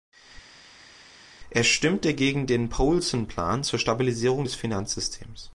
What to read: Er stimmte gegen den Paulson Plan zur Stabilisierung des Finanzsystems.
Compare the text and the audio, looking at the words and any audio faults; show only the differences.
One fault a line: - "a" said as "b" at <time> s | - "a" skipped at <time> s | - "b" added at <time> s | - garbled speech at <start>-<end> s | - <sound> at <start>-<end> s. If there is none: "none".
none